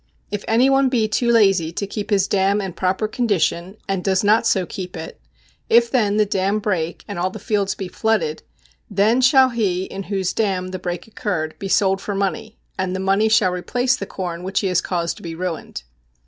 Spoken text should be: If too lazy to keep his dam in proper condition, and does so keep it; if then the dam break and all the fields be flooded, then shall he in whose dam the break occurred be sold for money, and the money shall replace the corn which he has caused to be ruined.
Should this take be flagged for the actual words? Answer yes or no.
yes